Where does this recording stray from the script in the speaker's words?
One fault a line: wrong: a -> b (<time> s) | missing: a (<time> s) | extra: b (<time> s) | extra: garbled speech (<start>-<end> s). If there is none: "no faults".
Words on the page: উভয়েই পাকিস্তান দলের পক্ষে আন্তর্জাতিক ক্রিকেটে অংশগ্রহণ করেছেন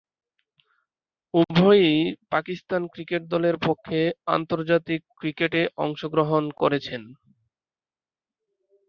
extra: ক্রিকেট (2.9 s)